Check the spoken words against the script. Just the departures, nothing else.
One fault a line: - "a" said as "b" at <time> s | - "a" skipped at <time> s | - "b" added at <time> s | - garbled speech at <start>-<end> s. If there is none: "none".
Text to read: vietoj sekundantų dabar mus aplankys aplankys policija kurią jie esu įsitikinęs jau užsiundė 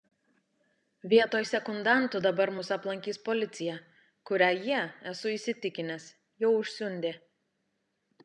- "aplankys" skipped at 3.2 s